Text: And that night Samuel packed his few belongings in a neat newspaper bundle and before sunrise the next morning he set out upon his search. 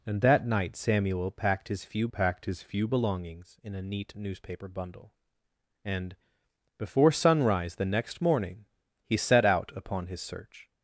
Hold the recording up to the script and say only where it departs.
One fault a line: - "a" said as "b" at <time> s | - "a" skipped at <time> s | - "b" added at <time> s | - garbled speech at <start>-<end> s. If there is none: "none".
- "packed his few" added at 2.1 s